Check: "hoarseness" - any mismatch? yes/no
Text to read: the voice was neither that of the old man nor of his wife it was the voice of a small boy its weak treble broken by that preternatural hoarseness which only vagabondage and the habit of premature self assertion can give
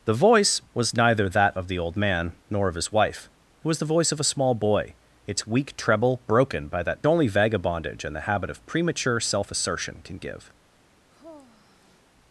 yes